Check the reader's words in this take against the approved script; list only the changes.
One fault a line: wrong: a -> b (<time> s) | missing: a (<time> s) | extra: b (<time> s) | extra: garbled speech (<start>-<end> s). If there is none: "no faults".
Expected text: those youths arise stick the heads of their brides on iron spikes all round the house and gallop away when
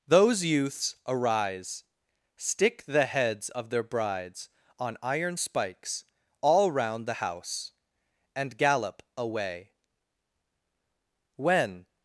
no faults